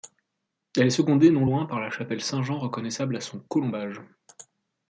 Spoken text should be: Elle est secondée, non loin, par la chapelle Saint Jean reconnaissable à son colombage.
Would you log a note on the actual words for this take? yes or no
no